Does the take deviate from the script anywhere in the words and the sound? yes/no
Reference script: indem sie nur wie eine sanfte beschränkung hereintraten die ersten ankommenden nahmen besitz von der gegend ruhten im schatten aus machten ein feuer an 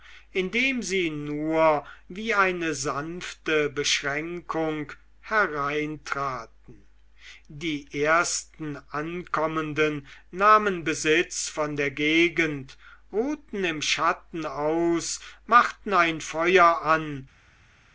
no